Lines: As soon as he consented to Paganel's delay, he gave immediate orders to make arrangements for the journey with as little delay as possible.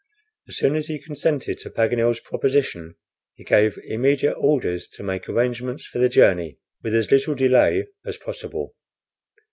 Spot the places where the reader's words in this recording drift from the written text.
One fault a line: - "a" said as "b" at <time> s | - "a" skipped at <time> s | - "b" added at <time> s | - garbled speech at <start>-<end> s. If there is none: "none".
- "delay" said as "proposition" at 2.2 s